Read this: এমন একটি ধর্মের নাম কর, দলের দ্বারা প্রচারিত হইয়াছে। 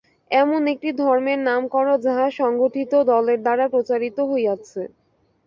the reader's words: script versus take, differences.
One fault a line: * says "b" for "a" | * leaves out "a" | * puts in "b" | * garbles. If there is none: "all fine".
* puts in "যাহা সংগঠিত"